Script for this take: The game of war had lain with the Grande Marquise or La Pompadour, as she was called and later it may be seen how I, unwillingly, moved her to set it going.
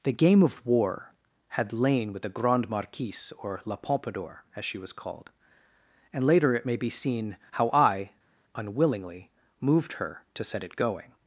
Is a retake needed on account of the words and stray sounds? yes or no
no